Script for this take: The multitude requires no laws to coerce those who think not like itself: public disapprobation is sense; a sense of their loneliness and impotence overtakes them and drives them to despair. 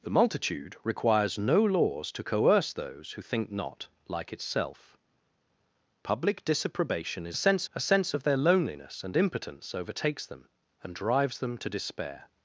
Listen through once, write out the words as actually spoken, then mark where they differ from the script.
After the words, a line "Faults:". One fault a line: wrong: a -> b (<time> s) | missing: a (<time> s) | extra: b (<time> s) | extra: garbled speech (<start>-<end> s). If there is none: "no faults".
The multitude requires no laws to coerce those who think not like itself: public disapprobation is sense; a sense of their loneliness and impotence overtakes them and drives them to despair.
Faults:
no faults